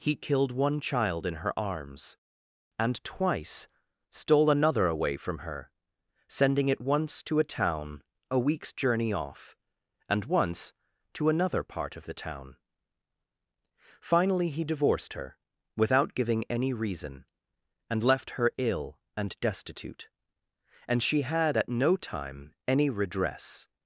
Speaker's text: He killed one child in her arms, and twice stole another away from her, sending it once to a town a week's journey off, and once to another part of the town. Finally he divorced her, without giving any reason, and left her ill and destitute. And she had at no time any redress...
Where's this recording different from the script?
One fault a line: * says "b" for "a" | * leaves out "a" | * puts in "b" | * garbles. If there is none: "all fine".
all fine